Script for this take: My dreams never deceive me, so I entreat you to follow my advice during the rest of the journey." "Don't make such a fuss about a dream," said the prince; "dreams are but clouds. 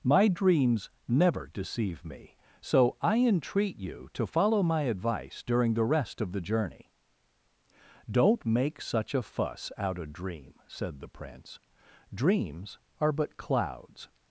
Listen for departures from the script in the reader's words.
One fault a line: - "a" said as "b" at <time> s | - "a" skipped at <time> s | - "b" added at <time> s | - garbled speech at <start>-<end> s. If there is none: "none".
- "about" said as "out" at 9.8 s